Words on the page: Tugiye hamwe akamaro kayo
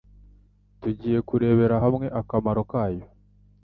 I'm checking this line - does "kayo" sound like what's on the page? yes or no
yes